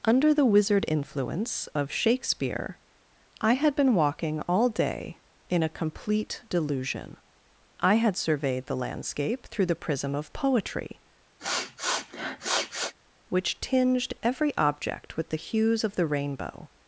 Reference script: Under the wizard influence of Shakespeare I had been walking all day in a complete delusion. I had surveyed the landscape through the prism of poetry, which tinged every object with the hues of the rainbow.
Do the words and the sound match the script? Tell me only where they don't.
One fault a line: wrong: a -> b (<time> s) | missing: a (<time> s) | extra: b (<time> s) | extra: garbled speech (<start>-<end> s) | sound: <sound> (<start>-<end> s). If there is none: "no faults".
sound: sniff (11.4-12.9 s)